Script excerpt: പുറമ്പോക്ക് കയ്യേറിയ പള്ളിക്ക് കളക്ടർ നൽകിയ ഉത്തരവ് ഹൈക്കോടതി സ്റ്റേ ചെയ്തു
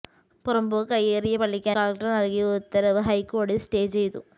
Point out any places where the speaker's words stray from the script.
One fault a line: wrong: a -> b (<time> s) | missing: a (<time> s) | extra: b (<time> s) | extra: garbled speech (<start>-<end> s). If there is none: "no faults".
no faults